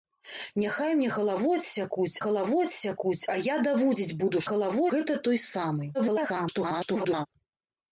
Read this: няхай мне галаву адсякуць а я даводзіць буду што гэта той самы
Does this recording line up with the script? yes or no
no